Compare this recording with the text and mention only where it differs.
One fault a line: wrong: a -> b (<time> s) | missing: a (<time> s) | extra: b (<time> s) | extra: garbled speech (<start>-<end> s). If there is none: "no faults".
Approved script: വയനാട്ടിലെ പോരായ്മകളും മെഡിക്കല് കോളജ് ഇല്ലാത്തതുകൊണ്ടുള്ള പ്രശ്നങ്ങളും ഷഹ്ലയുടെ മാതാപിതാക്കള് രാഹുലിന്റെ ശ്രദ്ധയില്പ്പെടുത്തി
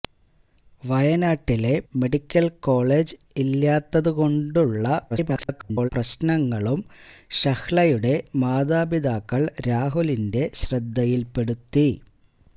missing: പോരായ്മകളും (1.7 s)
extra: garbled speech (5.1-5.9 s)